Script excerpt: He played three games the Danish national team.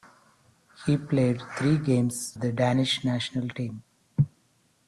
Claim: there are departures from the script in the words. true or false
false